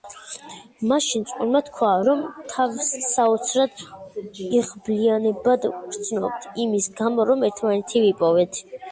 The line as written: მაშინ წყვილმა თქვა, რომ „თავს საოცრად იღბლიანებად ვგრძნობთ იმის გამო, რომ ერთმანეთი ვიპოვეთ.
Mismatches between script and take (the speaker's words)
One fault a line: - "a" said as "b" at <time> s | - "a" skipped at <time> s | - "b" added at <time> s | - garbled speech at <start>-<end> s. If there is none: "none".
none